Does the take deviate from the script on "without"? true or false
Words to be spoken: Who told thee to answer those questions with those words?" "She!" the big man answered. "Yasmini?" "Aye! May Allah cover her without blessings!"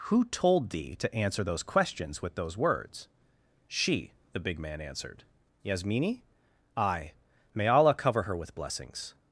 true